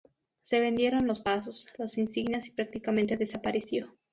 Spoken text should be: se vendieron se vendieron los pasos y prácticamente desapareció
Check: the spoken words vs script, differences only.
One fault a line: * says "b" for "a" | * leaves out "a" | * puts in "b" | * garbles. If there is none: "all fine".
* says "los pasos las insignias" for "se vendieron los pasos"